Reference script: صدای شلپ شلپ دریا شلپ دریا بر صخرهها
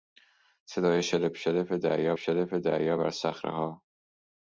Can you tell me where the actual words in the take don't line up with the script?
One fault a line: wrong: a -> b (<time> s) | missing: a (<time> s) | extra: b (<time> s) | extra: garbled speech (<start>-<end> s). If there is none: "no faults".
no faults